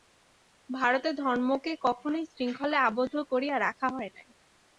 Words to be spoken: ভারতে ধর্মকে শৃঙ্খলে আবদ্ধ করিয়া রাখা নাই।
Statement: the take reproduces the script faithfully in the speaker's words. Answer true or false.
false